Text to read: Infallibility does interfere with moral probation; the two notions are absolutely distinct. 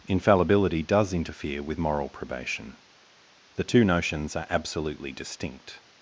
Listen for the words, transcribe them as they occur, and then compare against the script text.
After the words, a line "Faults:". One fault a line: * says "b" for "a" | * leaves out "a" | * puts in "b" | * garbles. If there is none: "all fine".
Infallibility does interfere with moral probation; the two notions are absolutely distinct.
Faults:
all fine